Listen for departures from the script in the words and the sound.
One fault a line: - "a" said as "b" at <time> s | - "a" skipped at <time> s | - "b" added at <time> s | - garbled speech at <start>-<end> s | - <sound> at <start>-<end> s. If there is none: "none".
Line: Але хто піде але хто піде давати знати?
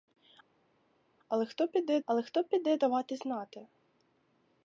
none